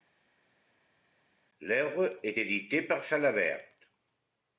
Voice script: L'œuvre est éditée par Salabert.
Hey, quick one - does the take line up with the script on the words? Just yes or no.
yes